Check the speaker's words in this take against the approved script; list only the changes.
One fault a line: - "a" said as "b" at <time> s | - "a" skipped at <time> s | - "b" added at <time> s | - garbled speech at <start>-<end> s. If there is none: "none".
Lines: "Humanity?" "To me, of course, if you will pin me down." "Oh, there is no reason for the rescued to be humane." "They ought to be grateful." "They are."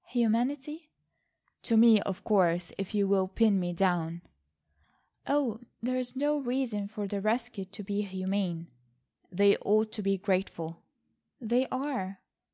none